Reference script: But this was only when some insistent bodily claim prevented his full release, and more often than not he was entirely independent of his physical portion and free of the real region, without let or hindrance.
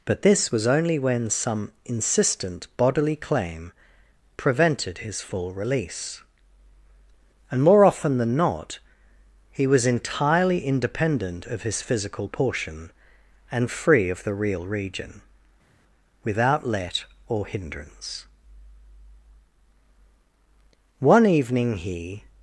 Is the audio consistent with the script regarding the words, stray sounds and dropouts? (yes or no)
no